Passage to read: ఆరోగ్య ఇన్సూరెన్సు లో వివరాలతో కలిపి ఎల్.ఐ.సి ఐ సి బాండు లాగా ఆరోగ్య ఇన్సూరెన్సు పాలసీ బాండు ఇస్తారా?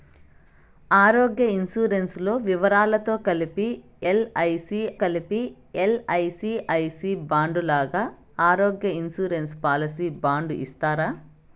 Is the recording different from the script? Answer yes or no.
yes